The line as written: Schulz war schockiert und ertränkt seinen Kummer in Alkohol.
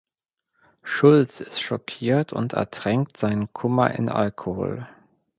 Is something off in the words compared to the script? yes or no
yes